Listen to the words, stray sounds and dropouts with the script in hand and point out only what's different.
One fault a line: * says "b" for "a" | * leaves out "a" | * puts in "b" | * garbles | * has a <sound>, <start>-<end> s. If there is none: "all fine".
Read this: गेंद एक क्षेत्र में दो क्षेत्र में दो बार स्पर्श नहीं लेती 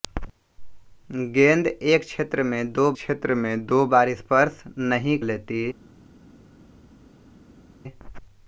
all fine